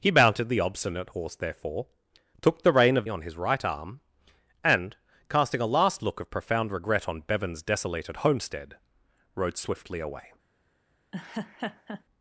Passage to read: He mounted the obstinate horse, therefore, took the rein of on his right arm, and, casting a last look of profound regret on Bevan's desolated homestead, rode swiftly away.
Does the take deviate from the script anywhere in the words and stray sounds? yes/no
yes